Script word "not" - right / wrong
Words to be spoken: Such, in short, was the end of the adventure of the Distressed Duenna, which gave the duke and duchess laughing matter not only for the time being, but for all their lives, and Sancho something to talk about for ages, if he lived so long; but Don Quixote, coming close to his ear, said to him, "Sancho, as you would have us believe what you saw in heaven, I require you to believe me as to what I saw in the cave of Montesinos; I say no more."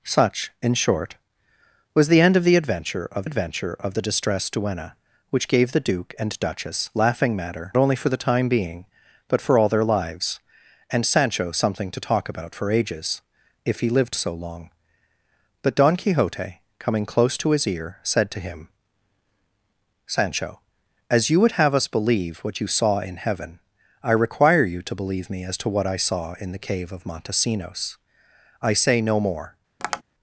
wrong